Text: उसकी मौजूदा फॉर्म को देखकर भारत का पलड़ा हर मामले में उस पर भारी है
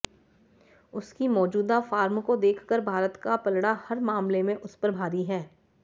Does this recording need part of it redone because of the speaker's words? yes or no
no